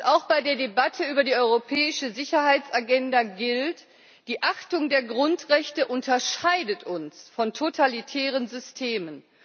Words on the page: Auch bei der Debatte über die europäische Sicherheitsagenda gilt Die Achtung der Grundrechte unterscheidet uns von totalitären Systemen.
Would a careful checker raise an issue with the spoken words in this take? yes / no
no